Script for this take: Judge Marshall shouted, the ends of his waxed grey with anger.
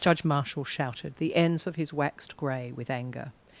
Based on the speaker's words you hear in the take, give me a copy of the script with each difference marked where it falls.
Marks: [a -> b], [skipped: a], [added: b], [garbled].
Judge Marshall shouted, the ends of his waxed grey with anger.